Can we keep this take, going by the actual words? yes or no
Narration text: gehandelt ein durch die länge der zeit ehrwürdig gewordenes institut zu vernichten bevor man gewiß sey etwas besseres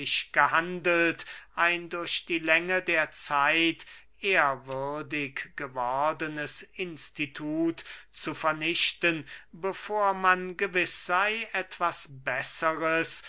yes